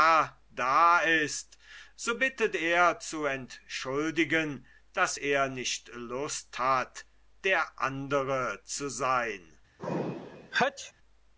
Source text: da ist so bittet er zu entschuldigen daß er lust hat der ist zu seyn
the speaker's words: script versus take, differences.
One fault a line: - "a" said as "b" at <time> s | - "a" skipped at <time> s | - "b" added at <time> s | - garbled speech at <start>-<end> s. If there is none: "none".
- "nicht" added at 5.5 s
- "ist" said as "andre" at 7.8 s